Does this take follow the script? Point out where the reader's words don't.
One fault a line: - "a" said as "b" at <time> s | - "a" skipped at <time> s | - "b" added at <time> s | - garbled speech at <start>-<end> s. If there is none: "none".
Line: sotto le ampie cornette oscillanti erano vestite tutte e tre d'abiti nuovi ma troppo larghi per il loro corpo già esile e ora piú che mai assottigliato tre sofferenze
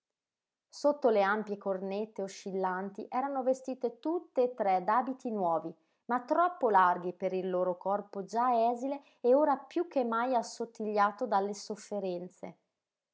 - "tre" said as "dalle" at 11.3 s